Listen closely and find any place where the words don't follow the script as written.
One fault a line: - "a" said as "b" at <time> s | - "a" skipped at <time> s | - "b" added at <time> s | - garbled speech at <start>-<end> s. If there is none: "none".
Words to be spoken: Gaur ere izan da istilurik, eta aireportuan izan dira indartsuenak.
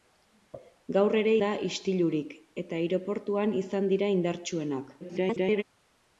- "izan" skipped at 1.3 s
- garbled speech at 5.0-5.6 s